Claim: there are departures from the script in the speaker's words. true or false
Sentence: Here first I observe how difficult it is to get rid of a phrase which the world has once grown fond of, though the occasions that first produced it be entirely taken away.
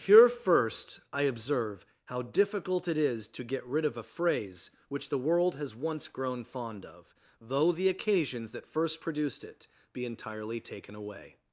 false